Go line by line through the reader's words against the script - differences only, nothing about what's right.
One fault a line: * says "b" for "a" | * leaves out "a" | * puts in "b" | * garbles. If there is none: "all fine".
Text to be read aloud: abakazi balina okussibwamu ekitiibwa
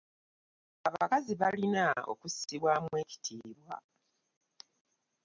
all fine